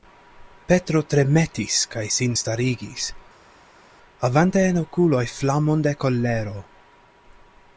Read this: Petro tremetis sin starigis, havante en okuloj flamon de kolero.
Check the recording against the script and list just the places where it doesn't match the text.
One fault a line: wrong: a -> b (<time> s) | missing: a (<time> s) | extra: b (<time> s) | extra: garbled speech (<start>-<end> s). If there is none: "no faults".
extra: kaj (1.9 s)